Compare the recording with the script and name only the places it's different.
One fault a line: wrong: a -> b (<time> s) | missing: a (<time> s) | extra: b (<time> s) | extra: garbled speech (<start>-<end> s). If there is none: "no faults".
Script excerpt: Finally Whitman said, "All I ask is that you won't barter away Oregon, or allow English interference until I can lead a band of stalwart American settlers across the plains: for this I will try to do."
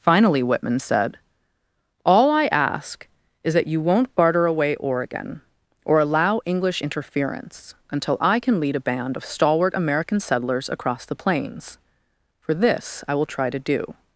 no faults